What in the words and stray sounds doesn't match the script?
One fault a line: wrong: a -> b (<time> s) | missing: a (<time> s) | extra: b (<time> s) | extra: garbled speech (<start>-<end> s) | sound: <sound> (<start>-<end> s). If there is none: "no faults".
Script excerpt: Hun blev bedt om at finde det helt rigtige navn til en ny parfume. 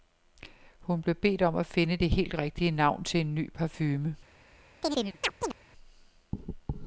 sound: chirp (4.8-5.6 s)